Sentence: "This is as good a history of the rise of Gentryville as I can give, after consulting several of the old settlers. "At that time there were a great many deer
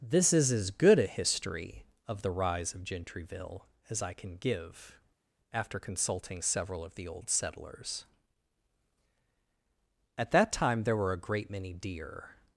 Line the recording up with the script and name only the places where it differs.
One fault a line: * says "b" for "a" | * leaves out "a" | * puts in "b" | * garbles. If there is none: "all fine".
all fine